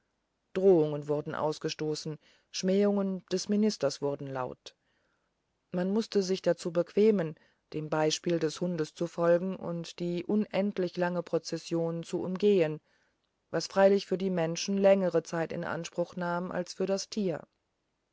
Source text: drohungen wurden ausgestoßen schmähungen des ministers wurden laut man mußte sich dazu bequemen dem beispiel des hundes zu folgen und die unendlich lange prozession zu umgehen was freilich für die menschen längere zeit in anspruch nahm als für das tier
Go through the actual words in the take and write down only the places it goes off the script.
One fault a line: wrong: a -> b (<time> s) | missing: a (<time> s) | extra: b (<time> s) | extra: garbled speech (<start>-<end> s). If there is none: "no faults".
no faults